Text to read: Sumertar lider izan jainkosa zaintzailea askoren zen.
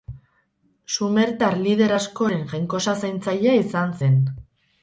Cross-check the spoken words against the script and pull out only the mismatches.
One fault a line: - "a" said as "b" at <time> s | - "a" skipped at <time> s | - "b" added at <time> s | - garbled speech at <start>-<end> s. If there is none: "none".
- "izan" said as "askoren" at 1.9 s
- "askoren" said as "izan" at 3.7 s